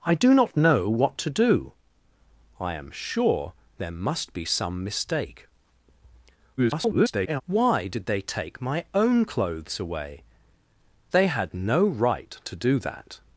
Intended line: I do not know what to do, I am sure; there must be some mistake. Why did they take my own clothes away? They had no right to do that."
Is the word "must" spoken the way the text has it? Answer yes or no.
yes